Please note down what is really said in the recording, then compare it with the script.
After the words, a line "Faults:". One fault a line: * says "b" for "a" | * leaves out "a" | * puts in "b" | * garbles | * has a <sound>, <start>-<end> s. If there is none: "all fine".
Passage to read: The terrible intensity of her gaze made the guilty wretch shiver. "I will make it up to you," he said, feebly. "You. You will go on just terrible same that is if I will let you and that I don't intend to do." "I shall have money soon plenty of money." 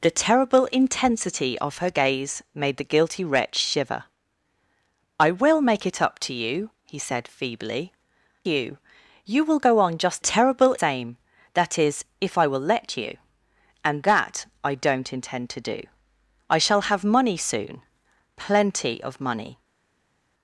The terrible intensity of her gaze made the guilty wretch shiver. "I will make it up to you," he said, feebly. "You. You will go on just terrible same that is if I will let you and that I don't intend to do." "I shall have money soon plenty of money."
Faults:
all fine